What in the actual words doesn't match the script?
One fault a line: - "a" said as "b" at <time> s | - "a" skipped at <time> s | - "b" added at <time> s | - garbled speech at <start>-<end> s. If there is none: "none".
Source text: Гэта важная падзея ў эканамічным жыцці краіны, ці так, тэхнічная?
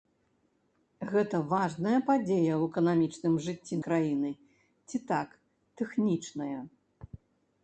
none